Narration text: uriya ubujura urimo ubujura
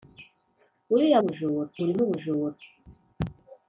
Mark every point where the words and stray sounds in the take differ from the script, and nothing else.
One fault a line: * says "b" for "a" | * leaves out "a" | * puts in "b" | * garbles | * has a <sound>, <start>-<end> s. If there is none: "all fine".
all fine